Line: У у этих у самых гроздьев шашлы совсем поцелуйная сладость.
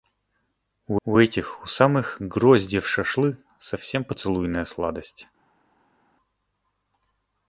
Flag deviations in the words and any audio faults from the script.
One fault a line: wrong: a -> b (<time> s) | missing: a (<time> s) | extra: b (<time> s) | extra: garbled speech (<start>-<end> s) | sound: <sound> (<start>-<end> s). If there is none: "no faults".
no faults